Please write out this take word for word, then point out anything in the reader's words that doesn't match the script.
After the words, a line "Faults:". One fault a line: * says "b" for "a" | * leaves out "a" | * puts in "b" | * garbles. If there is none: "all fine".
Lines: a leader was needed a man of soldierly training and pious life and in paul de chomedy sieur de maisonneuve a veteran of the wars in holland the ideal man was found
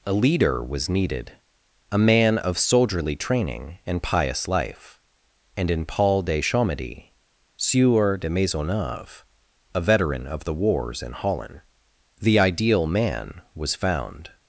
a leader was needed a man of soldierly training and pious life and in paul de chomedy sieur de maisonneuve a veteran of the wars in holland the ideal man was found
Faults:
all fine